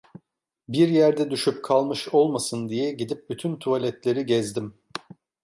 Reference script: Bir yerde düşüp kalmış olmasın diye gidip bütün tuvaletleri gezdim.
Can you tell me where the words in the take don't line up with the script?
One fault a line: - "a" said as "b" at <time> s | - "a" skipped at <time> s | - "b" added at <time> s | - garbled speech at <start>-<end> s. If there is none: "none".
none